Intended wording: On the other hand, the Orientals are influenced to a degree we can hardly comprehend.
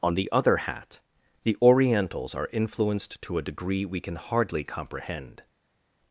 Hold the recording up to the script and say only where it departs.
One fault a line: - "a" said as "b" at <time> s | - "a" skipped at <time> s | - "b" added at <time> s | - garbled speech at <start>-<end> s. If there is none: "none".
- "hand" said as "hat" at 0.6 s